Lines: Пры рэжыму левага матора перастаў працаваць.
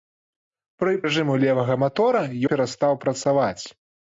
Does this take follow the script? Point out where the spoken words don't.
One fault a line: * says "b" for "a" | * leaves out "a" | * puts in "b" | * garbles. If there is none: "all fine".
all fine